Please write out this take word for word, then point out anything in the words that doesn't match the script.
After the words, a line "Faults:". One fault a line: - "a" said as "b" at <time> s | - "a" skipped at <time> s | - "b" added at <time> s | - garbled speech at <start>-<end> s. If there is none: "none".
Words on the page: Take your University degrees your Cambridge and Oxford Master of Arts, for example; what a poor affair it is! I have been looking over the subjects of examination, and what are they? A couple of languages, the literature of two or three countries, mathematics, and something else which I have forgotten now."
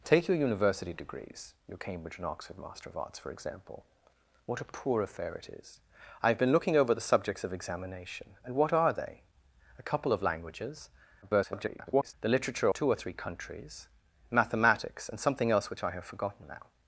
Take your University degrees your Cambridge and Oxford Master of Arts, for example; what a poor affair it is! I have been looking over the subjects of examination, and what are they? A couple of languages, [garbled] the literature two or three countries, mathematics, and something else which I have forgotten now."
Faults:
- garbled speech at 11.2-12.1 s
- "of" skipped at 12.7 s